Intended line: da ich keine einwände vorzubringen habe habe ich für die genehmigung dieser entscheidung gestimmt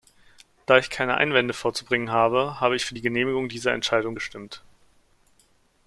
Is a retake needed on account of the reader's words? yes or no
no